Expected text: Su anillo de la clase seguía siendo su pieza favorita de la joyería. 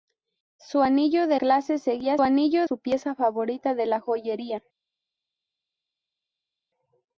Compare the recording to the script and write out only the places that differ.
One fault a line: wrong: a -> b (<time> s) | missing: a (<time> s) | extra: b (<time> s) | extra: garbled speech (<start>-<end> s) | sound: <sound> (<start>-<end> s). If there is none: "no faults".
missing: la (1.4 s)
wrong: siendo -> anillo (2.2 s)